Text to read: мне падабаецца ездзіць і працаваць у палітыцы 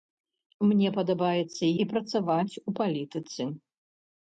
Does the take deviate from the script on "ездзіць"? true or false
true